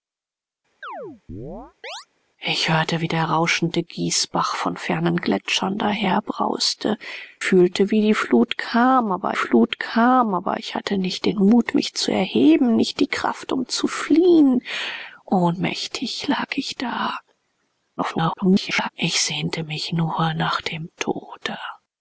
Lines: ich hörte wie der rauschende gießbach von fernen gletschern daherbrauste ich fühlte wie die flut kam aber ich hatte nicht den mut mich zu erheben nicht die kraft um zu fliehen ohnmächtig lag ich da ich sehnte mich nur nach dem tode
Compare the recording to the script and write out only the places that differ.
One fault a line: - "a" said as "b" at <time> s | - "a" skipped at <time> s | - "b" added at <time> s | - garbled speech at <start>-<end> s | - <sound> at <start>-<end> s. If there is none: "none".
- chirp at 0.8-2.1 s
- "ich" skipped at 7.0 s
- "flut kam aber" added at 9.3 s
- garbled speech at 18.0-18.9 s